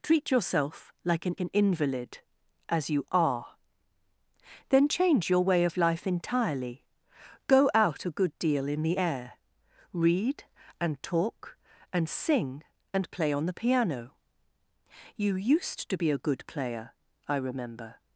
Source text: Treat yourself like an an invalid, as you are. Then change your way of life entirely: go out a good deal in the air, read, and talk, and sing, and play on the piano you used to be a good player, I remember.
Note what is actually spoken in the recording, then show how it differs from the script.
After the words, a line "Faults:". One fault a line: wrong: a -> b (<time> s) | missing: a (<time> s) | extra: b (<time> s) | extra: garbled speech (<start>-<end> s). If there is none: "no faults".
Treat yourself like an an invalid, as you are. Then change your way of life entirely: go out a good deal in the air, read, and talk, and sing, and play on the piano you used to be a good player, I remember.
Faults:
no faults